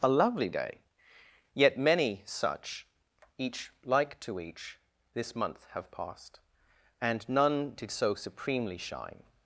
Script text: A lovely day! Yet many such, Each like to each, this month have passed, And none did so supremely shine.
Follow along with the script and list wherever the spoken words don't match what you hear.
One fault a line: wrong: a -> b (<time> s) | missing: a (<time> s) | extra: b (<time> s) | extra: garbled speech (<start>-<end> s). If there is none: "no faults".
no faults